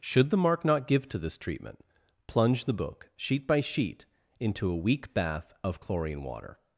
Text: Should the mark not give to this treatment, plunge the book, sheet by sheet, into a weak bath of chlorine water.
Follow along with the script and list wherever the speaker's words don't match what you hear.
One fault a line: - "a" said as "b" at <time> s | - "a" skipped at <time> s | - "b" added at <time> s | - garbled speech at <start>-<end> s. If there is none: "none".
none